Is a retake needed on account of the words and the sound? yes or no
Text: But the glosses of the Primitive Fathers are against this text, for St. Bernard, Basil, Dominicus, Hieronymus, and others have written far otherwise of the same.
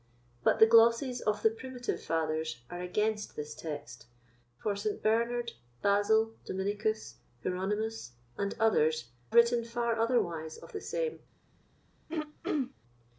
yes